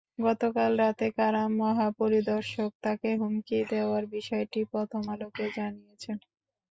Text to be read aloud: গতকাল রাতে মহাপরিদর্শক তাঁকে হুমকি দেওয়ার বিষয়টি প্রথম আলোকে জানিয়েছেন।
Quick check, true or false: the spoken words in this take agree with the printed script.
false